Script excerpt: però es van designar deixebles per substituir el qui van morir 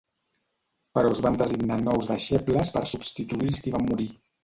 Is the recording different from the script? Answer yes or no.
yes